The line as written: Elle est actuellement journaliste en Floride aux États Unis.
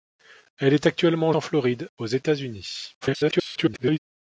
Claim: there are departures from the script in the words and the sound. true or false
true